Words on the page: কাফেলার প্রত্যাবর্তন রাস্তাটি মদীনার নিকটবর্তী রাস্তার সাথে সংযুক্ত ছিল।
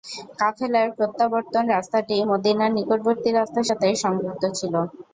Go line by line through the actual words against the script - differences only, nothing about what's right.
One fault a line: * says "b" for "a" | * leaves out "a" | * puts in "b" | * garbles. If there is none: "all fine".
all fine